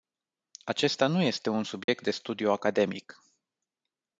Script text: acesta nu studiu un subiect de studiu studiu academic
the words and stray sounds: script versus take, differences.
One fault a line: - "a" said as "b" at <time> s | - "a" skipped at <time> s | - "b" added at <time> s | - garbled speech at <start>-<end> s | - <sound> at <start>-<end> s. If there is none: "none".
- "studiu" said as "este" at 1.2 s
- dropout at 1.8-1.9 s
- "studiu" skipped at 2.5 s